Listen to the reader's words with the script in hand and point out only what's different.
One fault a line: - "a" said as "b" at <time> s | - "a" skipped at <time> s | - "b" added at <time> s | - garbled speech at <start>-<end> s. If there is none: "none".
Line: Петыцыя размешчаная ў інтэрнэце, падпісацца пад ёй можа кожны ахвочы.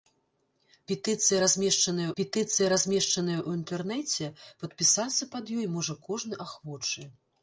- "петыцыя размешчаная" added at 2.2 s